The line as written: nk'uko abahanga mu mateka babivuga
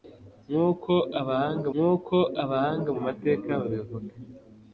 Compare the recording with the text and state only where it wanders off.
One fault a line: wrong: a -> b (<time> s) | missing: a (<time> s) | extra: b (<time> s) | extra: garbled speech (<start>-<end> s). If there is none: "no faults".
extra: nk'uko abahanga (1.7 s)